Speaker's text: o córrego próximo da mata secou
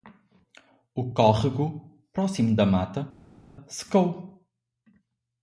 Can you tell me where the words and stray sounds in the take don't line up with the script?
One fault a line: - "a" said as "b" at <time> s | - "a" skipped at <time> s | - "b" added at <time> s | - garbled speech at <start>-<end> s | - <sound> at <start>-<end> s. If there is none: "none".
none